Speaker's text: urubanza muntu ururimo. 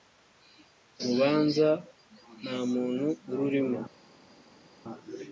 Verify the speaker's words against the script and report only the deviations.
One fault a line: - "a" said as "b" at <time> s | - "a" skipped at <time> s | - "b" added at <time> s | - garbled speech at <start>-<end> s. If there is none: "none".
- "nta" added at 2.4 s